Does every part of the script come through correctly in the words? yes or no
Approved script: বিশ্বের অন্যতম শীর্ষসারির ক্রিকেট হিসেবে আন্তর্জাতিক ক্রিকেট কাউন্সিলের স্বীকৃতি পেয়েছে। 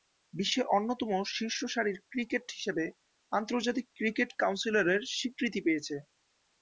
yes